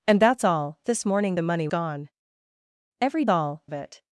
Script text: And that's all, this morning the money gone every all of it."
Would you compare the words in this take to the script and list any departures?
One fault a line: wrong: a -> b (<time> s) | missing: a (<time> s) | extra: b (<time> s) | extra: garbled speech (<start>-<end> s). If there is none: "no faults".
no faults